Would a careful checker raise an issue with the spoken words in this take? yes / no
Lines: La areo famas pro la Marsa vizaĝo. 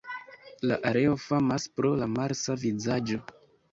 no